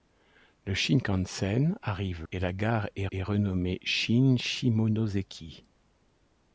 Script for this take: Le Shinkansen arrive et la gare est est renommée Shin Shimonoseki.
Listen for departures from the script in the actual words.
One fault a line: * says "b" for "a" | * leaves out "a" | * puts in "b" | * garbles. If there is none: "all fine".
all fine